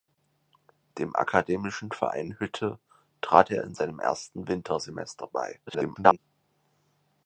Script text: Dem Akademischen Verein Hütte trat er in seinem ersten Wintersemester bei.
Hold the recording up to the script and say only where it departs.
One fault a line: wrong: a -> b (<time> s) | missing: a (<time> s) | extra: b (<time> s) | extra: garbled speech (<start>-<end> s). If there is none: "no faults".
extra: garbled speech (5.7-6.2 s)